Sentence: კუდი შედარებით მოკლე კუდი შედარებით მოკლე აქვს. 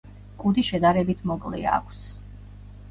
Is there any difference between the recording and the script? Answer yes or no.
yes